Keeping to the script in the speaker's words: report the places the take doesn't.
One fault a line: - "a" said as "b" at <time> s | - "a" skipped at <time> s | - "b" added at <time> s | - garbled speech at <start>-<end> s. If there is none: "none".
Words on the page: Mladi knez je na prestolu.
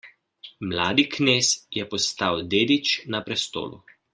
- "postal dedič" added at 1.9 s